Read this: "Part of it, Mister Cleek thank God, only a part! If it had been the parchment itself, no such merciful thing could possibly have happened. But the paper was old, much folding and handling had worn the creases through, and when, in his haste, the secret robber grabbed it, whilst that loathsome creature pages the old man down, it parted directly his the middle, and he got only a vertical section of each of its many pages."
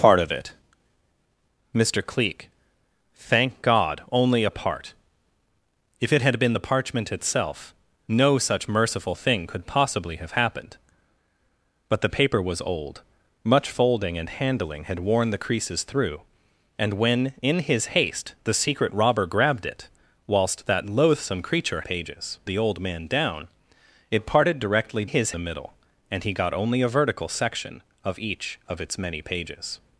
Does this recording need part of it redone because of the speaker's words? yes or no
no